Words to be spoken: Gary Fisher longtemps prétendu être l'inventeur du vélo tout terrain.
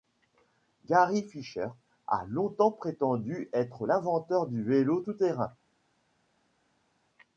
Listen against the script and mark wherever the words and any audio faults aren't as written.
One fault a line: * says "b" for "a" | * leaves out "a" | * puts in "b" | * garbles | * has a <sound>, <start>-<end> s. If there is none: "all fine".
* puts in "a"